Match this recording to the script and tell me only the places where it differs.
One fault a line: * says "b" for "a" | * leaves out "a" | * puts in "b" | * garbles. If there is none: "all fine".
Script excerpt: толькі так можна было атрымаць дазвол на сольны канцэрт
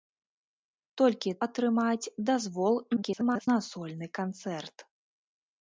* leaves out "так можна было"
* garbles